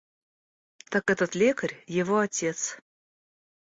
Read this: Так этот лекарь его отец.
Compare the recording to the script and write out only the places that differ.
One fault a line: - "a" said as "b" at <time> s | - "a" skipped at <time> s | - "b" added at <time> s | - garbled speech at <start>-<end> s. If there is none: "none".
none